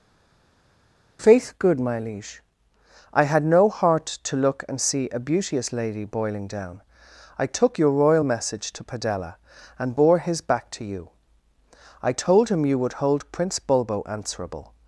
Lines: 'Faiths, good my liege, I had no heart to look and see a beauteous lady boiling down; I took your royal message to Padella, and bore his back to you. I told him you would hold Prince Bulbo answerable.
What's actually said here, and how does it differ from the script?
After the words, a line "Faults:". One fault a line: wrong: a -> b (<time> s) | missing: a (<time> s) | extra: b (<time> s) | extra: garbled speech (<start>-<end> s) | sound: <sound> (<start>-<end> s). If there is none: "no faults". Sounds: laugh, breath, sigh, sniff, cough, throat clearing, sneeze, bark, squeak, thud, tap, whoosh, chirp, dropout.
'Faith, good my liege, I had no heart to look and see a beauteous lady boiling down; I took your royal message to Padella, and bore his back to you. I told him you would hold Prince Bulbo answerable.
Faults:
wrong: Faiths -> Faith (1.2 s)